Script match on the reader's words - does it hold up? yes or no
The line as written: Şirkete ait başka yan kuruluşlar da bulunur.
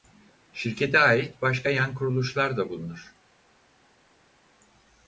yes